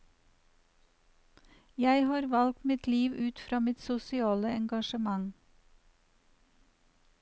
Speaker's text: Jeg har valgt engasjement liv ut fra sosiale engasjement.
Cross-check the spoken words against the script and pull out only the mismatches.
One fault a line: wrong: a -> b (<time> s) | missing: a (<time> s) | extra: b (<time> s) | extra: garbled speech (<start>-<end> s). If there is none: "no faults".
wrong: engasjement -> mitt (2.7 s)
extra: mitt (3.6 s)